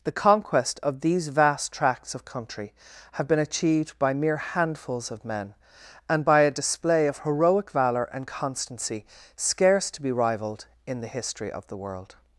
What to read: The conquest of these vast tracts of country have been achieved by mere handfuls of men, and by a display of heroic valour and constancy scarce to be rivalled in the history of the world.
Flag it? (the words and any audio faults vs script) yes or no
no